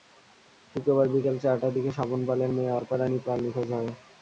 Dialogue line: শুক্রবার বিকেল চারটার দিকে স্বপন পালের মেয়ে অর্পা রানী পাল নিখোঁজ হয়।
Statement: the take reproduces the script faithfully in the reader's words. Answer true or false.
true